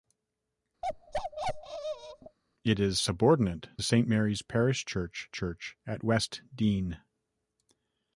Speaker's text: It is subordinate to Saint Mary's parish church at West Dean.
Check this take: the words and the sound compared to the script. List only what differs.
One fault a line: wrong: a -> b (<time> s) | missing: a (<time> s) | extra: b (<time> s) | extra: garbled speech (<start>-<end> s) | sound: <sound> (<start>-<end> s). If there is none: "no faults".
sound: bark (0.8-2.4 s)
missing: to (3.7 s)
extra: church (5.3 s)